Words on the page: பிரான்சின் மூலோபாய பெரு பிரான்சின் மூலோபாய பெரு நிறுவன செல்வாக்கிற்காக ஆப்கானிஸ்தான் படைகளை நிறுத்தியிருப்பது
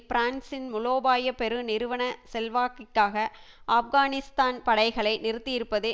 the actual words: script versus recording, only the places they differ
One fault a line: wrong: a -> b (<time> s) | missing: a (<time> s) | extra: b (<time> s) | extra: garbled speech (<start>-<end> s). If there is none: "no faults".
missing: பிரான்சின் மூலோபாய பெரு (1.6 s)